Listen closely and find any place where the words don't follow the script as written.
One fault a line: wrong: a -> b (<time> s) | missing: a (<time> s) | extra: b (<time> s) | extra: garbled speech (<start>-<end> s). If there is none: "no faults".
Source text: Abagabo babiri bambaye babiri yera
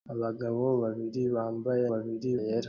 no faults